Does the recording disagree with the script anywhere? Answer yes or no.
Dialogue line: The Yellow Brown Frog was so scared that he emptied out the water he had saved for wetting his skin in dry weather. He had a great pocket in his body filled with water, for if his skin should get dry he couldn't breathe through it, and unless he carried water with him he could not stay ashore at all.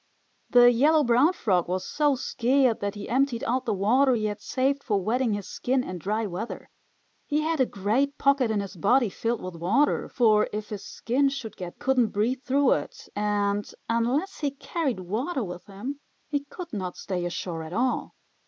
yes